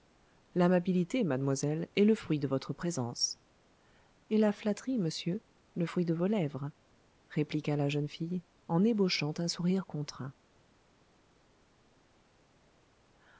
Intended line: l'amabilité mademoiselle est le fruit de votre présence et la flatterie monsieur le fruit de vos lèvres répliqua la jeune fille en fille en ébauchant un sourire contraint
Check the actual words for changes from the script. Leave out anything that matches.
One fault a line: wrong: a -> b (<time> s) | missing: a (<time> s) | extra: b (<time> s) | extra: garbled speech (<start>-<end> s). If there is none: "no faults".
missing: fille en (8.8 s)